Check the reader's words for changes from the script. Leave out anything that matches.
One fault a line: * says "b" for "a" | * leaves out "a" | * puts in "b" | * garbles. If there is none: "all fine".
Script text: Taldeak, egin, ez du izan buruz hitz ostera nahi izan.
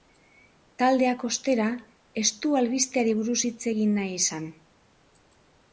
* says "ostera" for "egin"
* says "albisteari" for "izan"
* says "egin" for "ostera"